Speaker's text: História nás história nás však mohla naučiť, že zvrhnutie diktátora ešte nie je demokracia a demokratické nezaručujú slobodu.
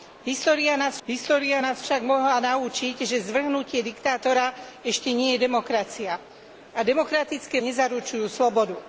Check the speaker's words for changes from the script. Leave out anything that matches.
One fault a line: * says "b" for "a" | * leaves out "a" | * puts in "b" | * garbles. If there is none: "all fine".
all fine